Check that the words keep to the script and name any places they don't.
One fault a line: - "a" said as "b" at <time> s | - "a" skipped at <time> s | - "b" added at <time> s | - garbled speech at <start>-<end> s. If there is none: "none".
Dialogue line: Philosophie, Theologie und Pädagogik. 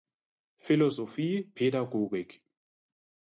- "Theologie und" skipped at 1.5 s